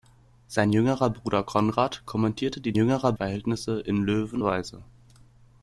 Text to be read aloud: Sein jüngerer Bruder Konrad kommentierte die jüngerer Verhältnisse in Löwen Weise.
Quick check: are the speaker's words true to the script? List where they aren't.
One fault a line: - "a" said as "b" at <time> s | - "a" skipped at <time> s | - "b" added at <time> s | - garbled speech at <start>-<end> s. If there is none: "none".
none